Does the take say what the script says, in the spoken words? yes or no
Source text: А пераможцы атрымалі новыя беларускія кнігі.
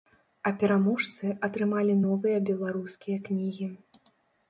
yes